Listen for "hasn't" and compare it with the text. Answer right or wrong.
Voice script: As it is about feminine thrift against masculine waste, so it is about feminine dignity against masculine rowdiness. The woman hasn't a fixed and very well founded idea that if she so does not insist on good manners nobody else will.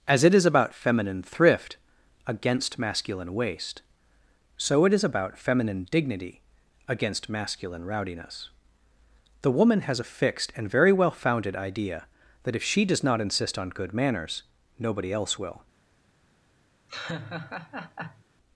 wrong